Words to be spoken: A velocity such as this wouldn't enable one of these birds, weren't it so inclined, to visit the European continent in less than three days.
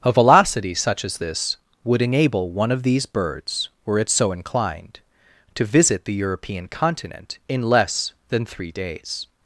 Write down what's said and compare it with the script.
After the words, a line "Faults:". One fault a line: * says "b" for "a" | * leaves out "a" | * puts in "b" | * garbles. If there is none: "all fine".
A velocity such as this would enable one of these birds, were it so inclined, to visit the European continent in less than three days.
Faults:
* says "would" for "wouldn't"
* says "were" for "weren't"